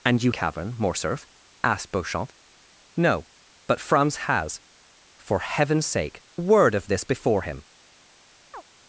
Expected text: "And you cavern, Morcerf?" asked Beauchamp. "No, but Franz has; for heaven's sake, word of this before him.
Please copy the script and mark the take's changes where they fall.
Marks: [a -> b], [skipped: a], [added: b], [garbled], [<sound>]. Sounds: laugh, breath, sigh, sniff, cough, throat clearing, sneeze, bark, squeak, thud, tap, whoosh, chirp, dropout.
"And you cavern, Morcerf?" asked Beauchamp. "No, but Franz has; for heaven's sake, word of this before him. [chirp]